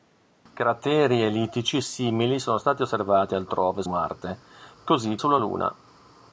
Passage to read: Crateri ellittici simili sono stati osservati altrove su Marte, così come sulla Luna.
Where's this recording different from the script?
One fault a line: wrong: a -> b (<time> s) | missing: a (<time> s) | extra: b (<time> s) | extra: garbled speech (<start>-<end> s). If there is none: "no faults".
missing: su (3.8 s)
missing: come (5.2 s)